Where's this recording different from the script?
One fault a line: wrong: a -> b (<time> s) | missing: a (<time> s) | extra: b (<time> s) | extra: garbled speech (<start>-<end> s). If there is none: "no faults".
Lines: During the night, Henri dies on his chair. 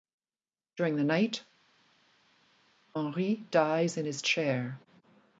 wrong: on -> in (4.0 s)